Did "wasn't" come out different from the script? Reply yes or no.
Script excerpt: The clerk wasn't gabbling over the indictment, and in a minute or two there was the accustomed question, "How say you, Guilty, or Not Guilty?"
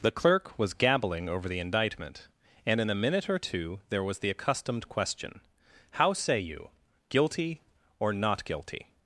yes